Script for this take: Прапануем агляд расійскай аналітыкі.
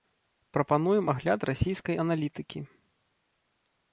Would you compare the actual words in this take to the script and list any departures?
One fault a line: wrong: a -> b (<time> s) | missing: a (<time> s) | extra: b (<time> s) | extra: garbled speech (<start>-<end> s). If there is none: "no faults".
no faults